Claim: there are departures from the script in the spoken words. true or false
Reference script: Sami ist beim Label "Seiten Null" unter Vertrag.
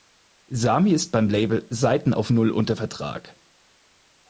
true